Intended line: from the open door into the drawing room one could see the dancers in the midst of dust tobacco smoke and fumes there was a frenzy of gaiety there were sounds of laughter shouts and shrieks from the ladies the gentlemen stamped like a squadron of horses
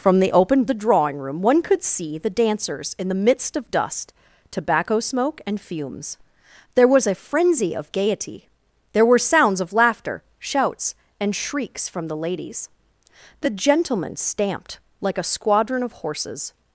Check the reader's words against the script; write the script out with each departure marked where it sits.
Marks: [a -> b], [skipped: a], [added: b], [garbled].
from the open [skipped: door into] the drawing room one could see the dancers in the midst of dust tobacco smoke and fumes there was a frenzy of gaiety there were sounds of laughter shouts and shrieks from the ladies the gentlemen stamped like a squadron of horses